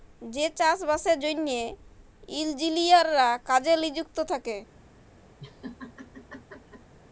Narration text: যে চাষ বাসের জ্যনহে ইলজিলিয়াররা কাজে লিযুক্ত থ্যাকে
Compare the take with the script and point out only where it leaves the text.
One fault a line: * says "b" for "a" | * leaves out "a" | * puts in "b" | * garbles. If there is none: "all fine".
all fine